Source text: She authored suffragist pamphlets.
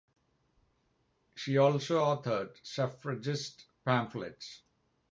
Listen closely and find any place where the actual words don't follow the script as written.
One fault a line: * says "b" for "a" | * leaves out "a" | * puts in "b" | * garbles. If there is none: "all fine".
* puts in "also"